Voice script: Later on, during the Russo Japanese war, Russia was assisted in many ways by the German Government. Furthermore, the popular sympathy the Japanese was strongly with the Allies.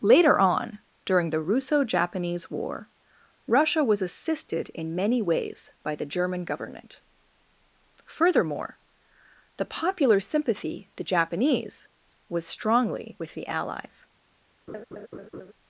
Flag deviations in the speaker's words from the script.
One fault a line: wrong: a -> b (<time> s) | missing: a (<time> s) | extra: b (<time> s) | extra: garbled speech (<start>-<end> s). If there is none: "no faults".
no faults